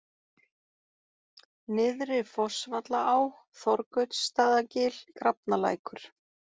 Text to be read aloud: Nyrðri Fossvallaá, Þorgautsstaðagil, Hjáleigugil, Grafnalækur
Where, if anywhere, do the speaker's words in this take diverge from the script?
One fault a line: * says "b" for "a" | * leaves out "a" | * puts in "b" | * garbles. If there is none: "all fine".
* leaves out "Hjáleigugil"